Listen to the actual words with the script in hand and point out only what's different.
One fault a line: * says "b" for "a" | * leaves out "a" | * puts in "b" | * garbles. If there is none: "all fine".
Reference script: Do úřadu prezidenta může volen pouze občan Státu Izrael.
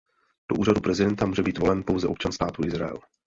* puts in "být"